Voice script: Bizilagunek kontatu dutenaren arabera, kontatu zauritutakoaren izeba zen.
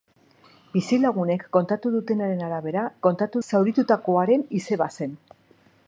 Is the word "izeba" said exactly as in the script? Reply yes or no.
yes